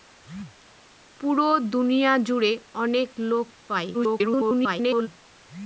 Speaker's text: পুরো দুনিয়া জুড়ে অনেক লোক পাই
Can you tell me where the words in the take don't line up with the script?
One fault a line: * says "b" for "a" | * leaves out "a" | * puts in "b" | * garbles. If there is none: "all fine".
* garbles